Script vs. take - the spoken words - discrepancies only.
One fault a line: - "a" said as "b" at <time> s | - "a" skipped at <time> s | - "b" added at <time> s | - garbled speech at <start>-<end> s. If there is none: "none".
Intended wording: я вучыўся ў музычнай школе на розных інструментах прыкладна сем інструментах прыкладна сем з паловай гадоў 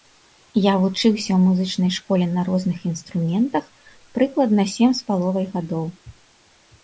- "інструментах прыкладна сем" skipped at 4.9 s